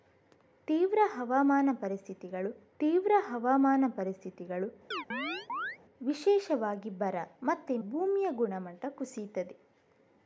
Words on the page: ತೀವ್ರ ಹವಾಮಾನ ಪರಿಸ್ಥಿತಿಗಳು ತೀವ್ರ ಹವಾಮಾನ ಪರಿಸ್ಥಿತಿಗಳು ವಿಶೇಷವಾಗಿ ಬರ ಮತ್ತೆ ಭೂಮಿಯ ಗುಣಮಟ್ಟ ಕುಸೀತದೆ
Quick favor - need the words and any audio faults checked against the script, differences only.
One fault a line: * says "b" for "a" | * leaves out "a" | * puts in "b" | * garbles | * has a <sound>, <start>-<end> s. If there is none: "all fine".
* has a chirp, 4.9-5.8 s